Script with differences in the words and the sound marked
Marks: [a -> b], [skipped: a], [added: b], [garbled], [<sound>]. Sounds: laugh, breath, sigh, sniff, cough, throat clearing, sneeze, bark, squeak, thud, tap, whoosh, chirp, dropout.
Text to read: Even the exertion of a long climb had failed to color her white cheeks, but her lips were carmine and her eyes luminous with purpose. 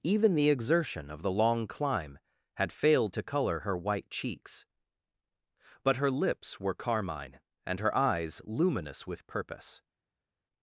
Even the exertion of [a -> the] long climb had failed to color her white cheeks, but her lips were carmine and her eyes luminous with purpose.